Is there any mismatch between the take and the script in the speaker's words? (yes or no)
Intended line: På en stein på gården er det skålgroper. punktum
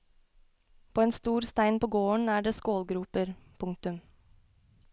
yes